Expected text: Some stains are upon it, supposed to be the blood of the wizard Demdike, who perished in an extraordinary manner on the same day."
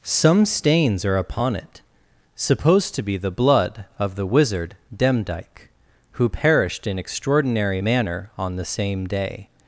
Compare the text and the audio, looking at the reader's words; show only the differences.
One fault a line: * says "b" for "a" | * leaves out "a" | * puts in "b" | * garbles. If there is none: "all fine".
* leaves out "an"